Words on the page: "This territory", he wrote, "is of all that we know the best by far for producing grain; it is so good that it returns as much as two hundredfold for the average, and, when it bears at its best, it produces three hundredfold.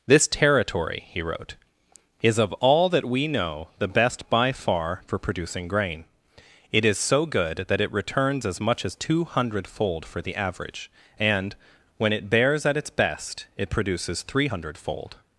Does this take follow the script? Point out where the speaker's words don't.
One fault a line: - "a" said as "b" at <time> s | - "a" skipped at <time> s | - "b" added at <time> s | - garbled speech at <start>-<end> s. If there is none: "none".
none